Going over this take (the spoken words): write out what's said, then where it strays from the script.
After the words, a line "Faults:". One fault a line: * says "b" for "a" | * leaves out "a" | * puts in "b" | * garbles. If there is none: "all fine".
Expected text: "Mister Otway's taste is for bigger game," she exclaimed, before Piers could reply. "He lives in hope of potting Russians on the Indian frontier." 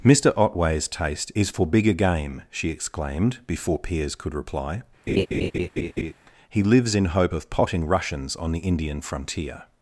"Mister Otway's taste is for bigger game," she exclaimed, before Piers could reply. "He lives in hope of potting Russians on the Indian frontier."
Faults:
all fine